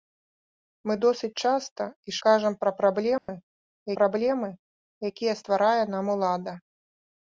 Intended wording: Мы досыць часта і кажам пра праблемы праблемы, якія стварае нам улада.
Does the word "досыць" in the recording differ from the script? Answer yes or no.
no